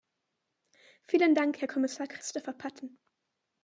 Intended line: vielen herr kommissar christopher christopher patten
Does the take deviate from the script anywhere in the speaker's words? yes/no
yes